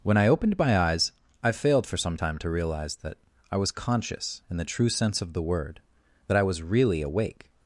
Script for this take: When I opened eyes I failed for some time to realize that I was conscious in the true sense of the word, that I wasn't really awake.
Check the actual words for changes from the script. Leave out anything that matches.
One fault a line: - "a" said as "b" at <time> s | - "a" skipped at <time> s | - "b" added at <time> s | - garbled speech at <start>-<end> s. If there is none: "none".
- "my" added at 0.6 s
- "wasn't" said as "was" at 6.4 s